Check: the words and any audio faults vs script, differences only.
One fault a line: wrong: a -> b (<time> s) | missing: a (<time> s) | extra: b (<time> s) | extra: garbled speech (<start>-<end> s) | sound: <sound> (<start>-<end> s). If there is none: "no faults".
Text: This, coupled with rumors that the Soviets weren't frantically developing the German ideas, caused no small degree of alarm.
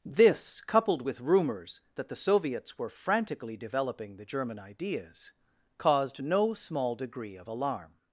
wrong: weren't -> were (2.8 s)